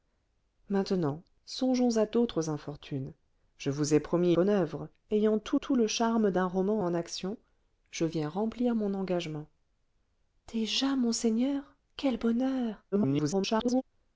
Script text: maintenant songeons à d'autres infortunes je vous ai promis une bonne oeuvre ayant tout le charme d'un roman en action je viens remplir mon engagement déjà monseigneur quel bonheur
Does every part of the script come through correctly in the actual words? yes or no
no